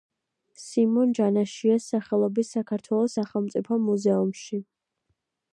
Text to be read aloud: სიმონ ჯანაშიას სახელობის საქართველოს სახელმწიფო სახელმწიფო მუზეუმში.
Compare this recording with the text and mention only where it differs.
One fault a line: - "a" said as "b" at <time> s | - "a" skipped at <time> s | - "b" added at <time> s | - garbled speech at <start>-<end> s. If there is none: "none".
- "სახელმწიფო" skipped at 3.8 s